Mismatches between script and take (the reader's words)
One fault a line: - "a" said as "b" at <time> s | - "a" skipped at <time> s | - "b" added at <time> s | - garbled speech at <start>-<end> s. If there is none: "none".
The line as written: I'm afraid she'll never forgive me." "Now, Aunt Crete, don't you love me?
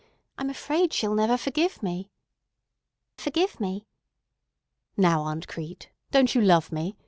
- "forgive me" added at 3.2 s